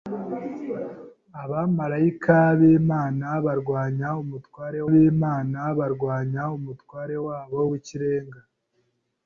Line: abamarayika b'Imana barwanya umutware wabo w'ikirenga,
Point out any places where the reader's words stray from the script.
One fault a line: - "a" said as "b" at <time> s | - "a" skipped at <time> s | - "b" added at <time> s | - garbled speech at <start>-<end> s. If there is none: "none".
- "b'Imana barwanya umutware" added at 4.9 s